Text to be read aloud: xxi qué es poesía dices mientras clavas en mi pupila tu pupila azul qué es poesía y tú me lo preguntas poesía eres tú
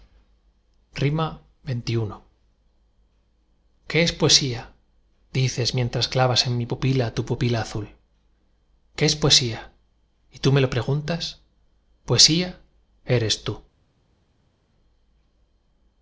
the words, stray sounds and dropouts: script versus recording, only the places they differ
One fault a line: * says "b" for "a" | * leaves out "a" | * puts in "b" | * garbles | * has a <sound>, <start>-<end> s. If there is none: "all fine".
all fine